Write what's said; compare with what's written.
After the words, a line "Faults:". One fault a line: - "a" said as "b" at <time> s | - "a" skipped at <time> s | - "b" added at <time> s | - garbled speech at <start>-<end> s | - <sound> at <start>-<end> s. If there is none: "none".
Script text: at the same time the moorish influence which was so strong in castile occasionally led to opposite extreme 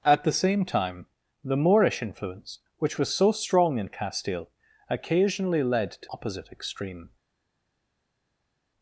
at the same time the moorish influence which was so strong in castile occasionally led to opposite extreme
Faults:
none